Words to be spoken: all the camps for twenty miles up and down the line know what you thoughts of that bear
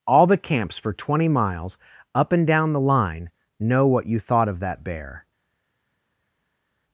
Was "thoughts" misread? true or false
true